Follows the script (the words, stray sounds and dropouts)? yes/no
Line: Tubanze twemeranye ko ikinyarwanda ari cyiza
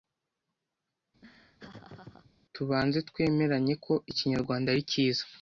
no